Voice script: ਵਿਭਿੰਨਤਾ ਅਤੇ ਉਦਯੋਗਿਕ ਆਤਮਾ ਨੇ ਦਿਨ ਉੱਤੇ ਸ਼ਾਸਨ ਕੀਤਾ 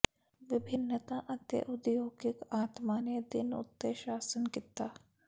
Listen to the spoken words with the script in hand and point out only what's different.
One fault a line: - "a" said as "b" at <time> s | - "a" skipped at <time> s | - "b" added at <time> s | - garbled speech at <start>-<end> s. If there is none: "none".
none